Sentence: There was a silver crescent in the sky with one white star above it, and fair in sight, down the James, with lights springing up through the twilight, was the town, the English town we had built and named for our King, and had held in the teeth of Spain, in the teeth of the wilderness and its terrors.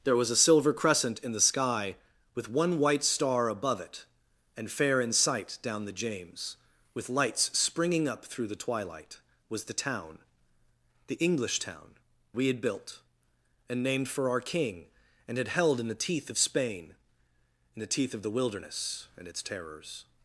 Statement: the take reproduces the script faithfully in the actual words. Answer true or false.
true